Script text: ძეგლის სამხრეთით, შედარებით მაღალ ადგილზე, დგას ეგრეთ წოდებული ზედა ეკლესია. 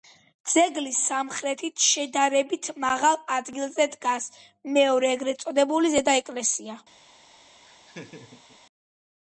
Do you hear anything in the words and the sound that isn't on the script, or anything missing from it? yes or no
yes